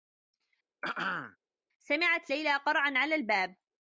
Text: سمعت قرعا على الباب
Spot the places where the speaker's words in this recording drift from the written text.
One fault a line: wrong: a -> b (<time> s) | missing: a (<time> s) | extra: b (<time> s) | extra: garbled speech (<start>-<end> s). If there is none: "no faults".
extra: ليلى (2.3 s)